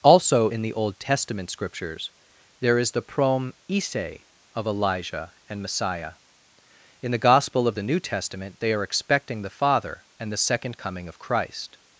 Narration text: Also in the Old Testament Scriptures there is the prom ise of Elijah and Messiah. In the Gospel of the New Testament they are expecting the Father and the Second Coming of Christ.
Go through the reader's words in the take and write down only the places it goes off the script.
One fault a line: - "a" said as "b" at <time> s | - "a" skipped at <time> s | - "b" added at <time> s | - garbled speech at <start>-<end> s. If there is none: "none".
none